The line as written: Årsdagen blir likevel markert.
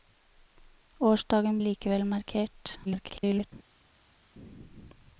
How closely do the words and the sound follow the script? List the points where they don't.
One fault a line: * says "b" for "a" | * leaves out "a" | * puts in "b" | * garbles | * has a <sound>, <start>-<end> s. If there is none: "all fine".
* leaves out "blir"
* garbles